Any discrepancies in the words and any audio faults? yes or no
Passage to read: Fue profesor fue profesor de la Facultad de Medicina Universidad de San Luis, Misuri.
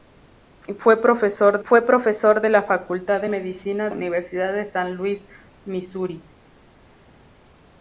no